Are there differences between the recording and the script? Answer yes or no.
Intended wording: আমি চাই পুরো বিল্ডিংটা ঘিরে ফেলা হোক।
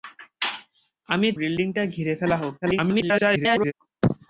yes